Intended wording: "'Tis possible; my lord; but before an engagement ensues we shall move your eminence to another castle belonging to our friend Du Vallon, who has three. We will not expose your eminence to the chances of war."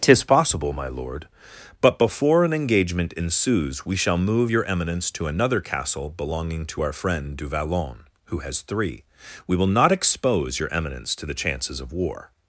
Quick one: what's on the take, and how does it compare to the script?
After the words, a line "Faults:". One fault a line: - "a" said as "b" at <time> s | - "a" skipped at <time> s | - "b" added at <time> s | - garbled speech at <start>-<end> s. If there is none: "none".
"'Tis possible; my lord; but before an engagement ensues we shall move your eminence to another castle belonging to our friend Du Vallon, who has three. We will not expose your eminence to the chances of war."
Faults:
none